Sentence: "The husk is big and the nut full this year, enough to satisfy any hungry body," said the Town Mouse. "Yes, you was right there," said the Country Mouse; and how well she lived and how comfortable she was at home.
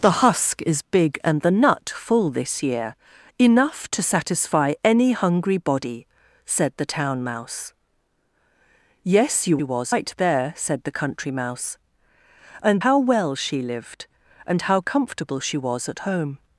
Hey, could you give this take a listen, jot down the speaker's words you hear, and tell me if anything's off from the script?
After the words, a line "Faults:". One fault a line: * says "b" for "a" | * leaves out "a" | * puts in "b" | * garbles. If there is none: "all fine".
"The husk is big and the nut full this year, enough to satisfy any hungry body," said the Town Mouse. "Yes, you was right there," said the Country Mouse; and how well she lived and how comfortable she was at home.
Faults:
all fine